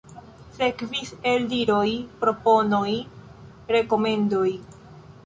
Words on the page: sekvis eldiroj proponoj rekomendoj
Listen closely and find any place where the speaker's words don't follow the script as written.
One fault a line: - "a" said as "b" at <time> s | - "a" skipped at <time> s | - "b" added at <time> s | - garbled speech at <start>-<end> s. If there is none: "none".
none